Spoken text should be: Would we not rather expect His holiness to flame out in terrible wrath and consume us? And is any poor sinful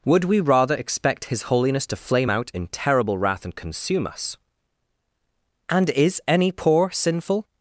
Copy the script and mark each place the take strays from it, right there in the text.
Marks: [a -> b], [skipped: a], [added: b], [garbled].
Would we [skipped: not] rather expect His holiness to flame out in terrible wrath and consume us? And is any poor sinful